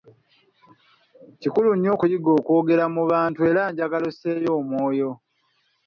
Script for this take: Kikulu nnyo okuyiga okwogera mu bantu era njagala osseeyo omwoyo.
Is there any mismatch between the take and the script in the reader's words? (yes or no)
no